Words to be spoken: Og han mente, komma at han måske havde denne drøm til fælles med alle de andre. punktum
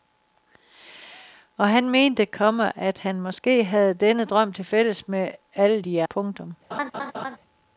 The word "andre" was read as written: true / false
false